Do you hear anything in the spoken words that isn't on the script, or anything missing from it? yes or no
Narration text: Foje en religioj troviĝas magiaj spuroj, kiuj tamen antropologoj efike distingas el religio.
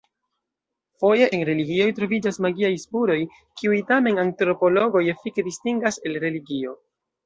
no